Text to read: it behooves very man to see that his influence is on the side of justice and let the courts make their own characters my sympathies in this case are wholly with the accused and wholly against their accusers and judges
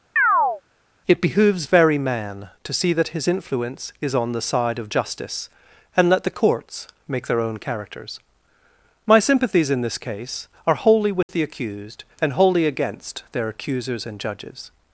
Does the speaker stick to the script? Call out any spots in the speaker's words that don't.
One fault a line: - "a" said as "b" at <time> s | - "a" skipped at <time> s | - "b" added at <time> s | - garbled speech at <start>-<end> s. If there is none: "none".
none